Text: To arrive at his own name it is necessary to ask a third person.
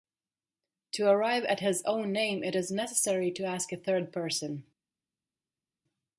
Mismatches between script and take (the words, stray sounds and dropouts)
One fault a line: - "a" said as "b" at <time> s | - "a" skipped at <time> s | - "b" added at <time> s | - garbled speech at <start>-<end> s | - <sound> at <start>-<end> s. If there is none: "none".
none